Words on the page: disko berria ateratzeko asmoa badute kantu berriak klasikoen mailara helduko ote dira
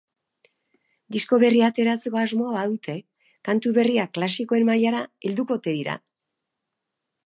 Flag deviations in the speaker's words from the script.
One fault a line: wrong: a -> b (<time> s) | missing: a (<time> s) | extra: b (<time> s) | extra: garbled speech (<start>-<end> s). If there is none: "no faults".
no faults